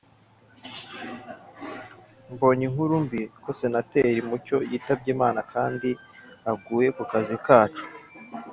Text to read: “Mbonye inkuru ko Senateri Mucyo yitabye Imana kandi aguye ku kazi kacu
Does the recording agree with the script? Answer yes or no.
no